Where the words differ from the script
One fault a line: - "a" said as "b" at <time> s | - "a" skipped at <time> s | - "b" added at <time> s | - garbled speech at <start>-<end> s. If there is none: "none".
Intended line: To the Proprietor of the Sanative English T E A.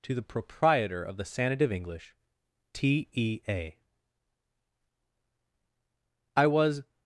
- "I was" added at 6.3 s